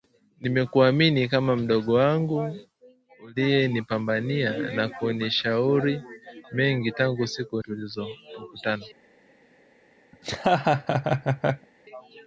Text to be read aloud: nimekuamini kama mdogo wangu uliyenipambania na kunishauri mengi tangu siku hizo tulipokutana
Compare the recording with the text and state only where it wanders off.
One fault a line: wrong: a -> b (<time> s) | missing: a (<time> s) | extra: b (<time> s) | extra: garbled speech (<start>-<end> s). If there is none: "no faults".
missing: hizo (7.6 s)